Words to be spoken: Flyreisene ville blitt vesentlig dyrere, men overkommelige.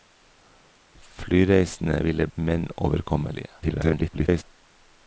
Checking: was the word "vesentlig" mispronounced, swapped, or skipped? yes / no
yes